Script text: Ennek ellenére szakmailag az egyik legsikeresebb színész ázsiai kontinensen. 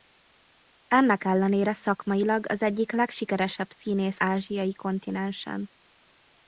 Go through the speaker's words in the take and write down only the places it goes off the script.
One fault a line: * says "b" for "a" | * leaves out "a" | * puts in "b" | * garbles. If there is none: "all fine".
all fine